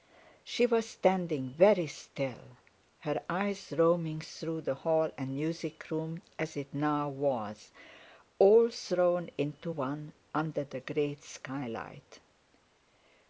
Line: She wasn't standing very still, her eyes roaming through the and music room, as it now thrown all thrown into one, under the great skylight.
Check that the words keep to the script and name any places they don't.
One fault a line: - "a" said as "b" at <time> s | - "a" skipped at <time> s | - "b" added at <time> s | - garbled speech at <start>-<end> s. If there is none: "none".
- "wasn't" said as "was" at 0.7 s
- "hall" added at 4.8 s
- "thrown" said as "was" at 7.1 s